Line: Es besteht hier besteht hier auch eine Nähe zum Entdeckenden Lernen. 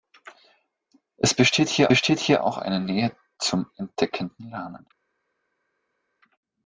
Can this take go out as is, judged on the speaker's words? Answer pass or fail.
pass